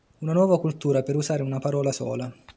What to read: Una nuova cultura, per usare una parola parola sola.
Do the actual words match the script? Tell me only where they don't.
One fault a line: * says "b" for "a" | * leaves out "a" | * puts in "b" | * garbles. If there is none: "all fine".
* leaves out "parola"